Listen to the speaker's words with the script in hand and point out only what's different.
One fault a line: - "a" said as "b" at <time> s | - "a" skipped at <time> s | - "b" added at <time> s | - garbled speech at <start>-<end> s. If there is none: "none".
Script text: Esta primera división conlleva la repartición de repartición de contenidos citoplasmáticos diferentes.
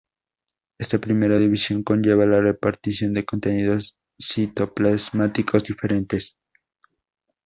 - "repartición de" skipped at 3.3 s